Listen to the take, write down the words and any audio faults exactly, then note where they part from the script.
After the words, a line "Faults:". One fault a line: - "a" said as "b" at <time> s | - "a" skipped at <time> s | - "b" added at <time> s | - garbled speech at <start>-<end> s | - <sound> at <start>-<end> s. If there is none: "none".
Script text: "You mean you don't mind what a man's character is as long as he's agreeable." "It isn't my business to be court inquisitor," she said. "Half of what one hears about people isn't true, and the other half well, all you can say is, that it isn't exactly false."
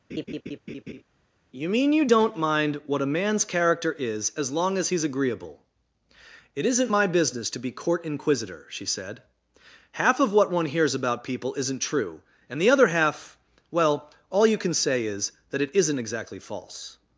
"You mean you don't mind what a man's character is as long as he's agreeable." "It isn't my business to be court inquisitor," she said. "Half of what one hears about people isn't true, and the other half well, all you can say is, that it isn't exactly false."
Faults:
- laugh at 0.1-1.0 s